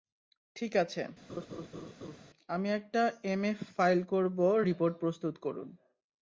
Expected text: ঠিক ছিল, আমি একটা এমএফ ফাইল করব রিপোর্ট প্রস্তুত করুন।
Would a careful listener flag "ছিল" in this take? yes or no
yes